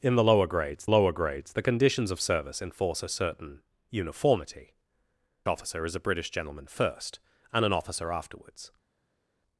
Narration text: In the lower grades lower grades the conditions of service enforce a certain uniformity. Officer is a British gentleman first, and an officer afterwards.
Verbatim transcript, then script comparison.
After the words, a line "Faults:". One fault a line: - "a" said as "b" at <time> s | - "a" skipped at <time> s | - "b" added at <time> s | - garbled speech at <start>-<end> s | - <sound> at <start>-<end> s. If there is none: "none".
In the lower grades lower grades the conditions of service enforce a certain uniformity. Officer is a British gentleman first, and an officer afterwards.
Faults:
none